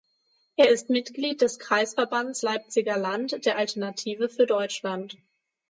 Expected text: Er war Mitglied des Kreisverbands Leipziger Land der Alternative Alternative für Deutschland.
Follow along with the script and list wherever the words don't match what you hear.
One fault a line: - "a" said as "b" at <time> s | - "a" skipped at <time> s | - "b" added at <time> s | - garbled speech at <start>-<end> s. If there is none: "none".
- "war" said as "ist" at 0.7 s
- "Alternative" skipped at 4.3 s